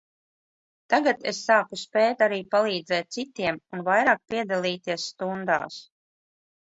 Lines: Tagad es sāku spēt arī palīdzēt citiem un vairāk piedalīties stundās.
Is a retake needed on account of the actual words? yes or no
no